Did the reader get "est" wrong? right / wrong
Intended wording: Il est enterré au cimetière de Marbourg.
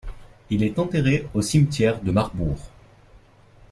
right